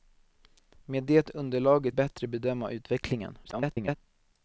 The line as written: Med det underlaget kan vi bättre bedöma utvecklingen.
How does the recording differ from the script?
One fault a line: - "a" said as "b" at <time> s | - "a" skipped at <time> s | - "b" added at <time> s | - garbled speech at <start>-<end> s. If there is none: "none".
- "kan vi" skipped at 2.0 s
- garbled speech at 3.4-4.0 s